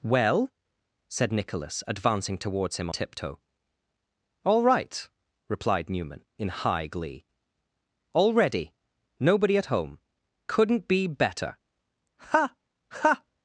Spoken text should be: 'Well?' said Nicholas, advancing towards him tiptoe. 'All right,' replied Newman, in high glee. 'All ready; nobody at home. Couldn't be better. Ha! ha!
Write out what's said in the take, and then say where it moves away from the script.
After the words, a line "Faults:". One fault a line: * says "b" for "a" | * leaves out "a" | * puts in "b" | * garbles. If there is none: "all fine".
'Well?' said Nicholas, advancing towards him tiptoe. 'All right,' replied Newman, in high glee. 'All ready; nobody at home. Couldn't be better. Ha! ha!
Faults:
all fine